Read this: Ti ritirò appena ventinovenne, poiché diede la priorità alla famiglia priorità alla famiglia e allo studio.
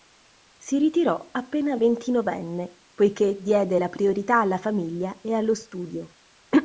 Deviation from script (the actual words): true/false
true